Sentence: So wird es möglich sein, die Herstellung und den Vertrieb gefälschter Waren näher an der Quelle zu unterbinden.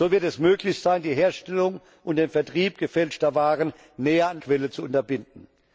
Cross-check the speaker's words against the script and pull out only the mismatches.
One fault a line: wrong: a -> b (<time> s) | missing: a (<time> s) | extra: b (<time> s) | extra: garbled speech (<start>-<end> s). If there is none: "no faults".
missing: der (4.4 s)